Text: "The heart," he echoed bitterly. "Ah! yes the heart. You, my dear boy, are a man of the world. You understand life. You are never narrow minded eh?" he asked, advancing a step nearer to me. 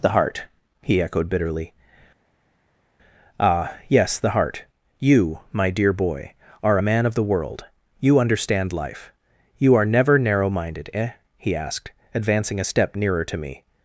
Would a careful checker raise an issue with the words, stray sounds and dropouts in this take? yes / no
no